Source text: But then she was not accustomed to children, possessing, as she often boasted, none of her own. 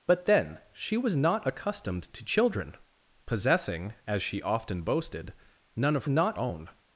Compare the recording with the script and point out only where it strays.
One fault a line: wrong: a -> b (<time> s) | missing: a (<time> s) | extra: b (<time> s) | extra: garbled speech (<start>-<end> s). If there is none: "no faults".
wrong: her -> not (6.1 s)